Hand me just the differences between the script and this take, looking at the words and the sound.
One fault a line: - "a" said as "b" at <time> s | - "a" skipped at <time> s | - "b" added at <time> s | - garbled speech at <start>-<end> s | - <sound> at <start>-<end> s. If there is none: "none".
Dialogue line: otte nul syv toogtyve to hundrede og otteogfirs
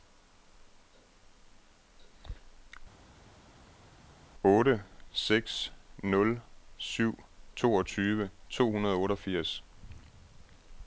- "seks" added at 5.1 s